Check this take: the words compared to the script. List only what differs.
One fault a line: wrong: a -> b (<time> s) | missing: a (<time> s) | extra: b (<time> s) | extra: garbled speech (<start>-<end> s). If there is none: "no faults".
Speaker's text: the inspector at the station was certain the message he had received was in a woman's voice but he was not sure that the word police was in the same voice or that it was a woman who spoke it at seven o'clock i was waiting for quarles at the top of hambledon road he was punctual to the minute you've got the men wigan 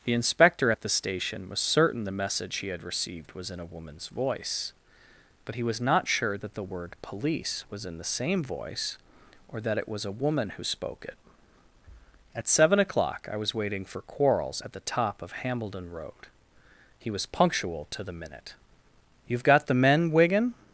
no faults